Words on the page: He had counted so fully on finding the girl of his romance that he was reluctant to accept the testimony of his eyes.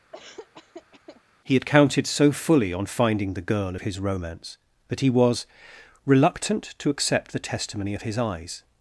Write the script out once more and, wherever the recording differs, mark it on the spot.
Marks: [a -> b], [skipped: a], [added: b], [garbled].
He had counted so fully on finding the girl of his romance that he was reluctant to accept the testimony of his eyes.